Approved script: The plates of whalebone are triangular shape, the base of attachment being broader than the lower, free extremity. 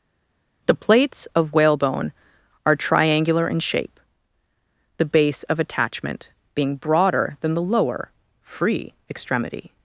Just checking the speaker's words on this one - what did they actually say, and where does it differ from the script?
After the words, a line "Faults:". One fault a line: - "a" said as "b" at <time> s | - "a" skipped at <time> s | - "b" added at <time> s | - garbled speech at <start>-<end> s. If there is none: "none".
The plates of whalebone are triangular in shape, the base of attachment being broader than the lower, free extremity.
Faults:
- "in" added at 3.5 s